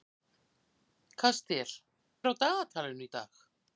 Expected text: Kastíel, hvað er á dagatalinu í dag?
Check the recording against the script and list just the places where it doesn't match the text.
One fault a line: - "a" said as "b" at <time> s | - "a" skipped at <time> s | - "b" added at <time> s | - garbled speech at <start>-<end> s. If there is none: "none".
- "hvað" skipped at 1.8 s